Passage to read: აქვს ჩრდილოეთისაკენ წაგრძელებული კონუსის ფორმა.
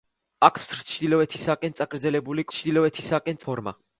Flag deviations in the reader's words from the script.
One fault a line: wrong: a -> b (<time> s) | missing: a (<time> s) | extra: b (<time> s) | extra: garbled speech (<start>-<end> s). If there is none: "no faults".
wrong: კონუსის -> ჩრდილოეთისაკენ (2.5 s)